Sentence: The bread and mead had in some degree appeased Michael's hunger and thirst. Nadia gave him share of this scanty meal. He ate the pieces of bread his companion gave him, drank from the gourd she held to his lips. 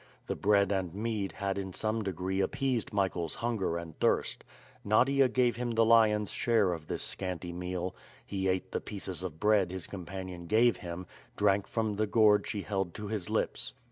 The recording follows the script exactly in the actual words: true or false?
false